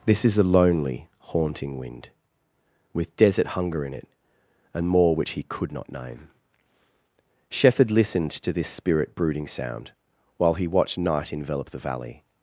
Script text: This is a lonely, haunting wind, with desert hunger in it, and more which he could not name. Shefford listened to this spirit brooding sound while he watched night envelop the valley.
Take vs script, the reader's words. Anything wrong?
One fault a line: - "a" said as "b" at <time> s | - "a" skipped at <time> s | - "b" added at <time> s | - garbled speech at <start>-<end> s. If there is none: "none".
none